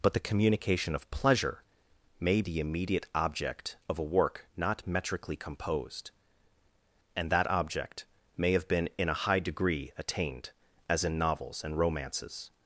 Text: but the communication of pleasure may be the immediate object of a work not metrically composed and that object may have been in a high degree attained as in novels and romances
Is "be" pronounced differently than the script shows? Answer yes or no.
yes